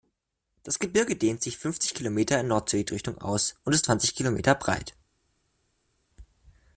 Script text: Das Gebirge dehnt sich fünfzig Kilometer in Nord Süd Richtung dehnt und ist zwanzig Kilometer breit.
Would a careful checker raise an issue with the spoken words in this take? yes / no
yes